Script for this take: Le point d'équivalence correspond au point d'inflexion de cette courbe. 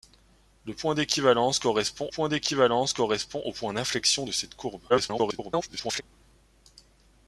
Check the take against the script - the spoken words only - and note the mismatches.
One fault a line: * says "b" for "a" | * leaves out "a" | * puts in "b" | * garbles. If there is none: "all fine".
* puts in "point d'équivalence correspond"
* garbles